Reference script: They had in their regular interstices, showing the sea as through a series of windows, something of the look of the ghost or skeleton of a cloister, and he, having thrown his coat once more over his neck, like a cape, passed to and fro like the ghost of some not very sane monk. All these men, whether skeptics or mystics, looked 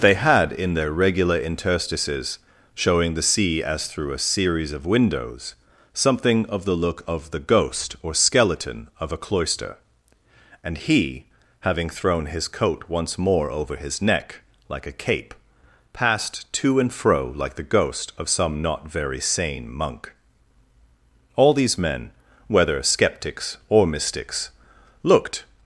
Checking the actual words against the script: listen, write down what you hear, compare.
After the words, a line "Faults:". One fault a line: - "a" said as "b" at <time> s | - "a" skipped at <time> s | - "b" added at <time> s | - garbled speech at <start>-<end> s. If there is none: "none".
They had in their regular interstices, showing the sea as through a series of windows, something of the look of the ghost or skeleton of a cloister, and he, having thrown his coat once more over his neck, like a cape, passed to and fro like the ghost of some not very sane monk. All these men, whether skeptics or mystics, looked
Faults:
none